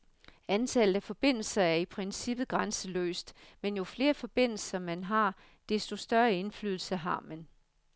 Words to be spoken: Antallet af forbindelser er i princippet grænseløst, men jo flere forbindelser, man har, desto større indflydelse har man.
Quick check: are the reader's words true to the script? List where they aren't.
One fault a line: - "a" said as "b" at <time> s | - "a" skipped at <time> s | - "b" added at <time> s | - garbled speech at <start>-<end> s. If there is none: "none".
none